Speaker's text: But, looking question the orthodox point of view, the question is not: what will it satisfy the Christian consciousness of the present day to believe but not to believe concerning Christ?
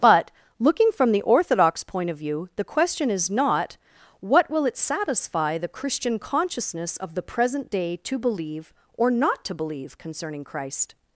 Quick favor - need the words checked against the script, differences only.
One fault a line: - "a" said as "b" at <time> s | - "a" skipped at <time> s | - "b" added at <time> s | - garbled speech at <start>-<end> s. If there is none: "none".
- "question" said as "from" at 0.9 s
- "but" said as "or" at 8.9 s